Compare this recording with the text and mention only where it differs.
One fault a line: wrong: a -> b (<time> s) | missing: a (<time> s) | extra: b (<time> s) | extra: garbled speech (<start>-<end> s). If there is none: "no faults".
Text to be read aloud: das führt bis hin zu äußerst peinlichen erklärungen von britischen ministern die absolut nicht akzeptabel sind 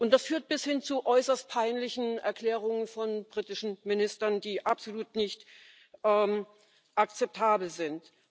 no faults